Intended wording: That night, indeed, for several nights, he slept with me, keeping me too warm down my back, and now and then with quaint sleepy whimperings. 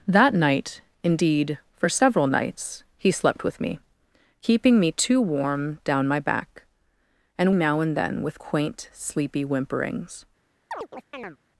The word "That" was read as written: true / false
true